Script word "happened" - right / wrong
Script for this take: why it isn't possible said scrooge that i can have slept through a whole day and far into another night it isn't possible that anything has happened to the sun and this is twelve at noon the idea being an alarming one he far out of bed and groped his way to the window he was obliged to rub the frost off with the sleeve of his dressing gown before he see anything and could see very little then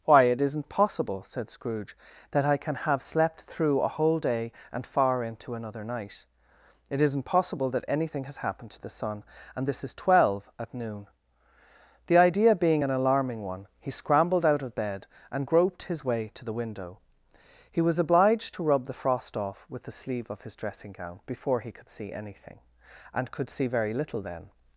right